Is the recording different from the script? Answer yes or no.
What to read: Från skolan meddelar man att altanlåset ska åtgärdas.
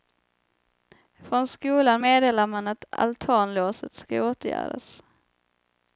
no